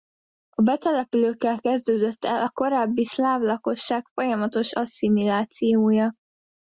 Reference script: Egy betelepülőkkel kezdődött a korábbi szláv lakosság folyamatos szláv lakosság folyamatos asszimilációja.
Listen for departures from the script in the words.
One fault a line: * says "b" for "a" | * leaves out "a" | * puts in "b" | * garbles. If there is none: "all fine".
* says "A" for "Egy"
* puts in "el"
* leaves out "szláv lakosság folyamatos"